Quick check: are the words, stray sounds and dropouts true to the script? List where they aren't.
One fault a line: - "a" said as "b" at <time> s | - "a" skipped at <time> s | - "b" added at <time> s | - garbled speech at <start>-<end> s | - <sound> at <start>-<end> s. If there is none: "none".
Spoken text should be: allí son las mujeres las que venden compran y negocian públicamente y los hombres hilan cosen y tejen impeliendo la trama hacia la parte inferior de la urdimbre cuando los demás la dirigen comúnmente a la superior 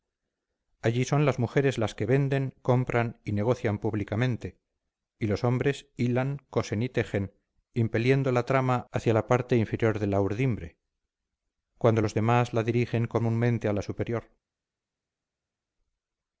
none